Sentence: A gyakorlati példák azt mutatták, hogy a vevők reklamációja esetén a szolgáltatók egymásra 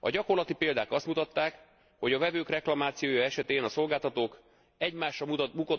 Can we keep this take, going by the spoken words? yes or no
yes